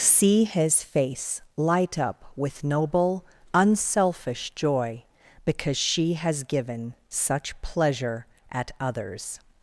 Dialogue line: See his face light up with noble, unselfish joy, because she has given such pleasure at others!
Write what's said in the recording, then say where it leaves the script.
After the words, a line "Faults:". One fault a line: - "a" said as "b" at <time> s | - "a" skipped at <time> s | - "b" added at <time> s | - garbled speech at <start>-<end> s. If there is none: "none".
See his face light up with noble, unselfish joy, because she has given such pleasure at others!
Faults:
none